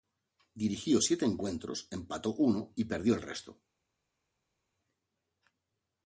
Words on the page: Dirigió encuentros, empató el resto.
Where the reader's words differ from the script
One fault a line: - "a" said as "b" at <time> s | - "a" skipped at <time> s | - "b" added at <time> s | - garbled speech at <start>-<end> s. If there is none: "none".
- "siete" added at 1.0 s
- "uno y perdió" added at 2.3 s